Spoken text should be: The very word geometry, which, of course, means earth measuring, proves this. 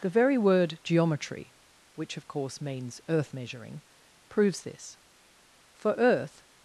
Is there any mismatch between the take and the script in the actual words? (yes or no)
yes